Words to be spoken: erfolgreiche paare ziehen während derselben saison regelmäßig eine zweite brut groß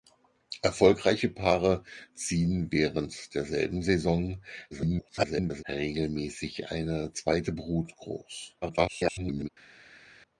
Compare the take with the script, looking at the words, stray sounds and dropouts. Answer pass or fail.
fail